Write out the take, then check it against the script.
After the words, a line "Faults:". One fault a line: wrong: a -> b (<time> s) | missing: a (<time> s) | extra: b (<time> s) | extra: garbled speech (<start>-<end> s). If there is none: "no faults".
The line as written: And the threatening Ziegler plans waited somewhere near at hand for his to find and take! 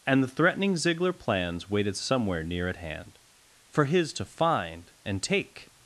And the threatening Ziegler plans waited somewhere near at hand for his to find and take!
Faults:
no faults